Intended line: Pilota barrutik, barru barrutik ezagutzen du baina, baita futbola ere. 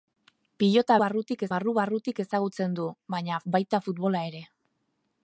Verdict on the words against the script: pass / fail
pass